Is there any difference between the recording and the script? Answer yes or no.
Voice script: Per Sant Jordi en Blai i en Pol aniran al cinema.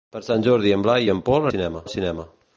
yes